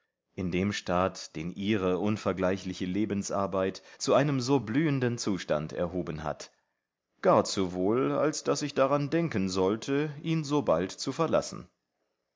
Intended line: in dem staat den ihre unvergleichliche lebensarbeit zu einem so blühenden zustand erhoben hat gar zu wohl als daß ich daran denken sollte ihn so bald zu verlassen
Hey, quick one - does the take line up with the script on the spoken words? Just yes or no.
yes